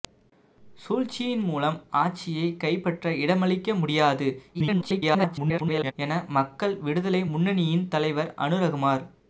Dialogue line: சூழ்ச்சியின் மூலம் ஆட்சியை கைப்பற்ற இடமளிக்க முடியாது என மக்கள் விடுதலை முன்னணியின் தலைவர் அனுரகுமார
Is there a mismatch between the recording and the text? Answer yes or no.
yes